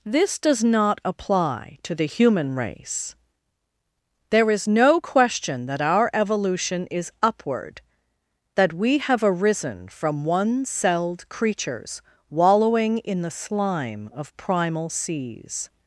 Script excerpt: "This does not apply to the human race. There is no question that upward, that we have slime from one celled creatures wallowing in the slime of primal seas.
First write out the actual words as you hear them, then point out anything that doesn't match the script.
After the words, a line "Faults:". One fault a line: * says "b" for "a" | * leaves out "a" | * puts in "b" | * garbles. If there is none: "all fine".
"This does not apply to the human race. There is no question that our evolution is upward, that we have arisen from one celled creatures wallowing in the slime of primal seas.
Faults:
* puts in "our evolution is"
* says "arisen" for "slime"